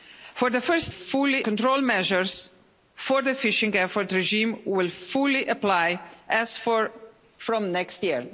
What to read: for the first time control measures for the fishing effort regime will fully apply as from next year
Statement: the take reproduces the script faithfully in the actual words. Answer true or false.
false